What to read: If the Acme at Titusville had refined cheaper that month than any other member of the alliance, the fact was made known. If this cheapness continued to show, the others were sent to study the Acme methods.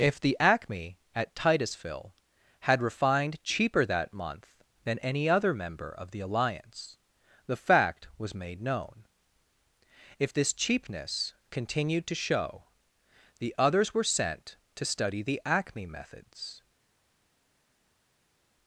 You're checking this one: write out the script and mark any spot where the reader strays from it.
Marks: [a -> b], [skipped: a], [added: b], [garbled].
If the Acme at Titusville had refined cheaper that month than any other member of the alliance, the fact was made known. If this cheapness continued to show, the others were sent to study the Acme methods.